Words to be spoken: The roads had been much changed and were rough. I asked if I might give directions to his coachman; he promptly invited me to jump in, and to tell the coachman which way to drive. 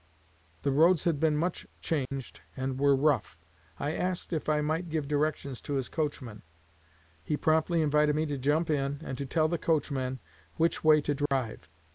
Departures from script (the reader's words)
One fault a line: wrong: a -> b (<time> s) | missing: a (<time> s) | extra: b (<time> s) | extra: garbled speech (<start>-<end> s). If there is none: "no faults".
no faults